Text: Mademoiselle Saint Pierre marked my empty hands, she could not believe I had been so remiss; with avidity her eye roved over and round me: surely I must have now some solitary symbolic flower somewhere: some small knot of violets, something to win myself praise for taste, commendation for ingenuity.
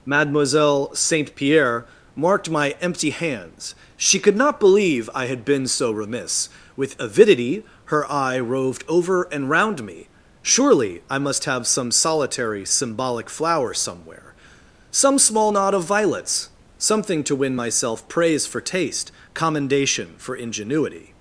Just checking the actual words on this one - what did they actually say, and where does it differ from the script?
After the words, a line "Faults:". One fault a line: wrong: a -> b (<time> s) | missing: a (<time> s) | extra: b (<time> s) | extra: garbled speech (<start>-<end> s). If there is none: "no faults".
Mademoiselle Saint Pierre marked my empty hands, she could not believe I had been so remiss; with avidity her eye roved over and round me: surely I must have some solitary symbolic flower somewhere: some small knot of violets, something to win myself praise for taste, commendation for ingenuity.
Faults:
missing: now (11.7 s)